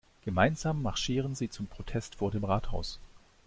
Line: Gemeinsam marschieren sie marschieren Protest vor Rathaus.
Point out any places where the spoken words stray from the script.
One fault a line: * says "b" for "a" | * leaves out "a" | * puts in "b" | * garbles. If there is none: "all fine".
* says "zum" for "marschieren"
* puts in "dem"